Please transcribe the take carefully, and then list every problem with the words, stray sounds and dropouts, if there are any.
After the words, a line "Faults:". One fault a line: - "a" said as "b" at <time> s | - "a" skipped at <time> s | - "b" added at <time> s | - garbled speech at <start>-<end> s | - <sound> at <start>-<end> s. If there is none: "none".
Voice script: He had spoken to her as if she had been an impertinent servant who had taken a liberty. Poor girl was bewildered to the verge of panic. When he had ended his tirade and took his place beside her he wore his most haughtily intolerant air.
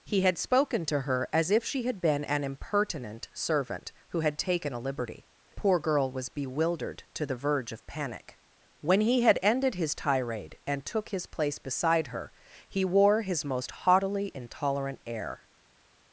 He had spoken to her as if she had been an impertinent servant who had taken a liberty. Poor girl was bewildered to the verge of panic. When he had ended his tirade and took his place beside her he wore his most haughtily intolerant air.
Faults:
none